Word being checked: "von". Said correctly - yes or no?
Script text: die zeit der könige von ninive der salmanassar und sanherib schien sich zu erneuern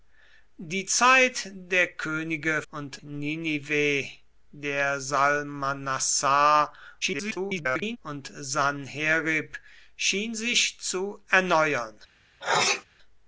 no